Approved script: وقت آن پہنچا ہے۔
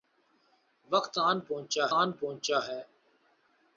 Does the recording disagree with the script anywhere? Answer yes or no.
yes